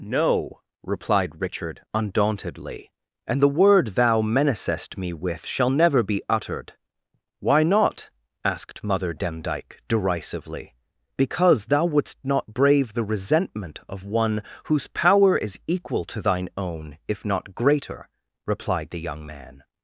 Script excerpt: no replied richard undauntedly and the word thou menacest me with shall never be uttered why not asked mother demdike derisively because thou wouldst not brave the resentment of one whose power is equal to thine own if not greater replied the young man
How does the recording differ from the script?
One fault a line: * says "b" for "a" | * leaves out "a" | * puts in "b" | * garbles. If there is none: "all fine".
all fine